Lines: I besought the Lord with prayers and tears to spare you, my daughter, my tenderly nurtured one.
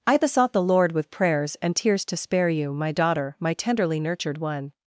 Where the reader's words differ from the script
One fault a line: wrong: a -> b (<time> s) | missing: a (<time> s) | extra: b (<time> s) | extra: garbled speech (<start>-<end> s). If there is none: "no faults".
no faults